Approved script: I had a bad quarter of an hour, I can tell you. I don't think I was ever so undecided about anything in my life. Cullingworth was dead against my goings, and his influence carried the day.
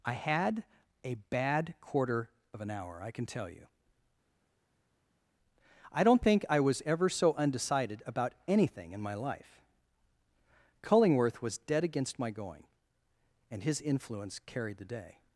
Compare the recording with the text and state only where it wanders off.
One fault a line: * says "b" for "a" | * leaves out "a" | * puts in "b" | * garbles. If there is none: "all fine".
* says "going" for "goings"